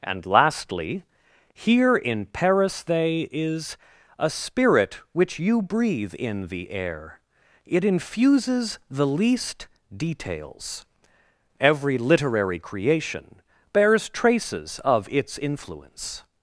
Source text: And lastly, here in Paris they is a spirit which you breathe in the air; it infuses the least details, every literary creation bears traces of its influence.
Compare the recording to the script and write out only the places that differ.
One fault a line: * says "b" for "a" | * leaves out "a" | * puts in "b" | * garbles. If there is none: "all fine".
all fine